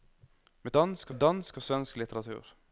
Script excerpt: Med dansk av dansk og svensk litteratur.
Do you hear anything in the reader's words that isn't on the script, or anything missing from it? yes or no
no